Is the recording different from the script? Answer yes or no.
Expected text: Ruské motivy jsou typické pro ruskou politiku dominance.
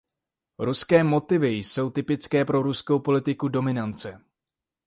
no